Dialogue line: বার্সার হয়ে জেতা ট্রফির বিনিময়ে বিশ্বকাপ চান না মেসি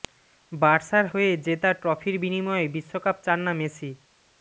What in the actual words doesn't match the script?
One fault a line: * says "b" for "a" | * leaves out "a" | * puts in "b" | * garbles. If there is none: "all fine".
all fine